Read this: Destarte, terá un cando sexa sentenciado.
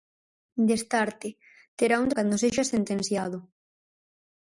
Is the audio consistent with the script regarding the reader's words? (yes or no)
yes